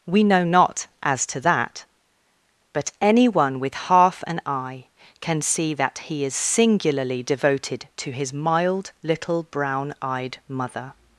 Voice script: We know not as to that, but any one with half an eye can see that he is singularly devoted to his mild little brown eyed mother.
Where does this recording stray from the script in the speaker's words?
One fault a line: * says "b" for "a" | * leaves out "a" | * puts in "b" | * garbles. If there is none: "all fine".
all fine